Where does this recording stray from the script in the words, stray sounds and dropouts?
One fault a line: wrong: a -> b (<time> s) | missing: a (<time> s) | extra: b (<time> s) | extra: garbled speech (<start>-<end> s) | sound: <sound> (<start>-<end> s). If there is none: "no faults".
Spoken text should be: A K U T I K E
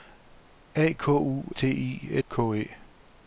no faults